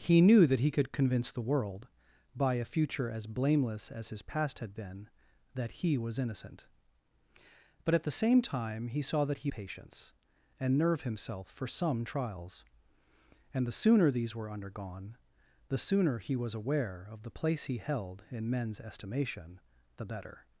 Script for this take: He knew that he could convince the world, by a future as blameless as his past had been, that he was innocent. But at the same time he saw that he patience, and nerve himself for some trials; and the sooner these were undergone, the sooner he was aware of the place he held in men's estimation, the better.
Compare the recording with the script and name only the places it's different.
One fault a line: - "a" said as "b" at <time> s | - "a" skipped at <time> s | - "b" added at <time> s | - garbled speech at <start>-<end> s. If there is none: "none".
none